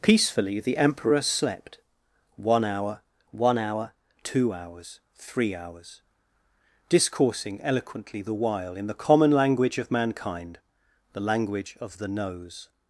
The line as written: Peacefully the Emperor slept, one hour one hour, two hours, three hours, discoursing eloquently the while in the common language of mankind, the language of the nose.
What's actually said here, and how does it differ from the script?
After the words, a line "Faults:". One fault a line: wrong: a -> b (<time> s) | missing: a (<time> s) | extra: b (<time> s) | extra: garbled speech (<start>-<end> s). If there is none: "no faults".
Peacefully the Emperor slept, one hour one hour, two hours, three hours, discoursing eloquently the while in the common language of mankind, the language of the nose.
Faults:
no faults